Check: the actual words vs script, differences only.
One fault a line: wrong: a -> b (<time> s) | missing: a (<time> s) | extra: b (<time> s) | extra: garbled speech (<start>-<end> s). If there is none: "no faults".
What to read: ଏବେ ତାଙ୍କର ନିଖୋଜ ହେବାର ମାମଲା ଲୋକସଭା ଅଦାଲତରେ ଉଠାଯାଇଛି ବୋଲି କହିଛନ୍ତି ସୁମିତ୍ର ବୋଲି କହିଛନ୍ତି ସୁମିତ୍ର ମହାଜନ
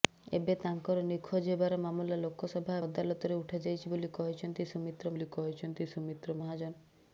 no faults